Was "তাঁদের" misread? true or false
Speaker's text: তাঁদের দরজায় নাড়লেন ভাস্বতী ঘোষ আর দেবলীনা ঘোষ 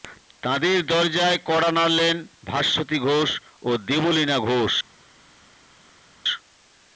false